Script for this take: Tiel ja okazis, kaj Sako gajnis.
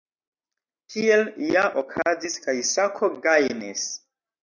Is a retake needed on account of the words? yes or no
no